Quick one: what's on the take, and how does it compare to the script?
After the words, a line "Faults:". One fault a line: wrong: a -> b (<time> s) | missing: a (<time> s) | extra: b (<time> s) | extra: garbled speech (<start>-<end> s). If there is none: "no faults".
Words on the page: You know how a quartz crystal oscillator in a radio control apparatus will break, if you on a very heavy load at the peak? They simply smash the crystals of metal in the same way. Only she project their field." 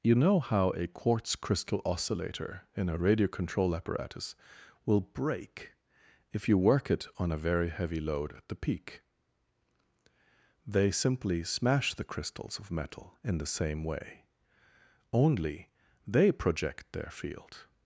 You know how a quartz crystal oscillator in a radio control apparatus will break, if you work it on a very heavy load at the peak? They simply smash the crystals of metal in the same way. Only they project their field."
Faults:
extra: work it (6.6 s)
wrong: she -> they (16.1 s)